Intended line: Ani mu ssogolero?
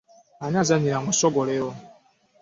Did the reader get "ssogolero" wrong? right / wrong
right